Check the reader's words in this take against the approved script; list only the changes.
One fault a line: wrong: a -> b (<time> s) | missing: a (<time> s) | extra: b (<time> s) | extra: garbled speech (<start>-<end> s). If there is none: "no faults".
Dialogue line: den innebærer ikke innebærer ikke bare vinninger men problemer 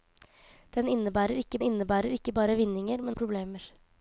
no faults